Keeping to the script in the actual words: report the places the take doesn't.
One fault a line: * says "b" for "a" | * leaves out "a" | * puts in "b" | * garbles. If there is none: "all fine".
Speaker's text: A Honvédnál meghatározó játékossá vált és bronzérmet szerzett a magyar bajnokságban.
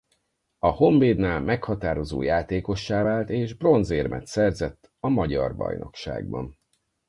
all fine